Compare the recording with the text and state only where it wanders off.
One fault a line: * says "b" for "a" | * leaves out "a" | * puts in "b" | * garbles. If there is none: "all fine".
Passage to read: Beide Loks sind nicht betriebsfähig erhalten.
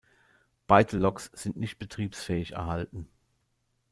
all fine